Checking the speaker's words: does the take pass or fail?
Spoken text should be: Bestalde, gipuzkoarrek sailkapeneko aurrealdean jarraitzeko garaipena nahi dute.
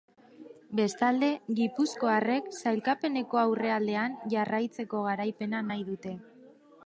pass